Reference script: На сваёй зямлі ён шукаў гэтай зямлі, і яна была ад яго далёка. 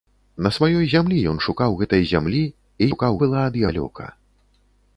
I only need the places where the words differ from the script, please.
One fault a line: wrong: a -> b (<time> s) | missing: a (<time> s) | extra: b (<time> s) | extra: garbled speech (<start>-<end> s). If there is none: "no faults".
wrong: яна -> шукаў (2.9 s)
missing: яго (3.6 s)